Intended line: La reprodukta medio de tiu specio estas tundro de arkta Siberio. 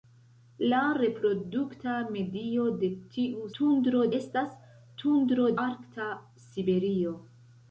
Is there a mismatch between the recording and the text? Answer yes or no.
yes